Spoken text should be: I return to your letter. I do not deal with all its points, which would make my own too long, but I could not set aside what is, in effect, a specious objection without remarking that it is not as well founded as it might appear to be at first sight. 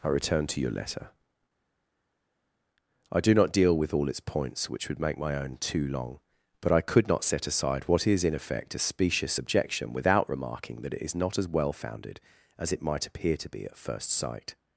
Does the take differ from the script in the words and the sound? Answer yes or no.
no